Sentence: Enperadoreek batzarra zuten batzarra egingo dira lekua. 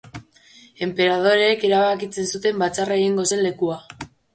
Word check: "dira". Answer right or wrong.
wrong